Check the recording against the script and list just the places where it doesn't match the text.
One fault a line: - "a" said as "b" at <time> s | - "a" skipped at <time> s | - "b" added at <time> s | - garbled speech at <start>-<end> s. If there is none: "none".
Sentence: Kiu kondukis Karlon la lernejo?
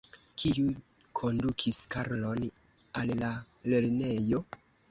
- "al" added at 3.0 s